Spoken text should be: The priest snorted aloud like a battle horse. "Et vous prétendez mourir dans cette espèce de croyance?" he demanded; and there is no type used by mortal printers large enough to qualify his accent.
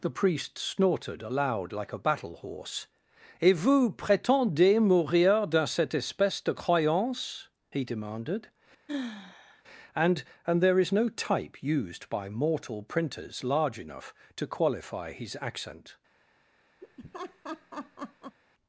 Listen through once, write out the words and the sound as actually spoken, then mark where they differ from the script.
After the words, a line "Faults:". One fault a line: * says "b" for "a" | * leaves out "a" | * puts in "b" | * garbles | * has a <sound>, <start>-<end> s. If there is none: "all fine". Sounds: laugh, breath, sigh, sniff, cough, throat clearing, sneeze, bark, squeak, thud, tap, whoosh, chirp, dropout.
The priest snorted aloud like a battle horse. "Et vous prétendez mourir dans cette espèce de croyance?" he demanded; and and there is no type used by mortal printers large enough to qualify his accent.
Faults:
* has a sigh, 8.9-9.6 s
* puts in "and"
* has a laugh, 16.8-18.4 s